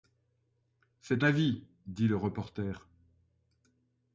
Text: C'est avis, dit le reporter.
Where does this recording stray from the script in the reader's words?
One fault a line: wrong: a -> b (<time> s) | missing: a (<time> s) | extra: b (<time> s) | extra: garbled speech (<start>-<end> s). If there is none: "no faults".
no faults